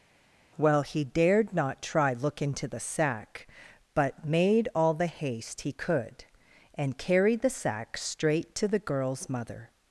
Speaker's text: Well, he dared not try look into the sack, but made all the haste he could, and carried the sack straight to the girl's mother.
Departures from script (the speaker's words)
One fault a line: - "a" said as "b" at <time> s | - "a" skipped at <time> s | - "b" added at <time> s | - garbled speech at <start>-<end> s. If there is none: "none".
none